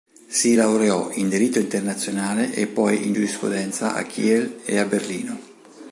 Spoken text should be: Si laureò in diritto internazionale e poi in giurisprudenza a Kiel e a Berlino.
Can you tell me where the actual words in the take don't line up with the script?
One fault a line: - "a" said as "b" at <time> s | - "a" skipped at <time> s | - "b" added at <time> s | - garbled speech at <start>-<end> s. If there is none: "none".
none